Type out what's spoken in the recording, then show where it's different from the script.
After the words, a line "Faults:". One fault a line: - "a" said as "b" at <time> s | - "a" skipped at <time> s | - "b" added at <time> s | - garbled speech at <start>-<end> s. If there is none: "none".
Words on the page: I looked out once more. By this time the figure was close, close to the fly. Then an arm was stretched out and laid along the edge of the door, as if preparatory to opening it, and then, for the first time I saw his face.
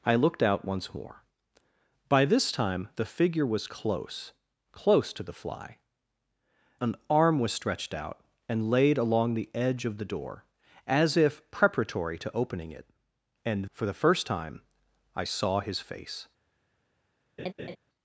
I looked out once more. By this time the figure was close, close to the fly. An arm was stretched out and laid along the edge of the door, as if preparatory to opening it, and for the first time I saw his face.
Faults:
- "Then" skipped at 5.8 s
- "then" skipped at 13.6 s